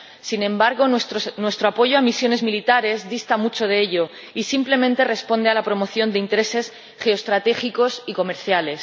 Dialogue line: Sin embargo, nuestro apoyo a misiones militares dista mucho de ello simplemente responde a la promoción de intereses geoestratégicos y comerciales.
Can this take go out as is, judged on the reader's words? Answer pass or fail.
fail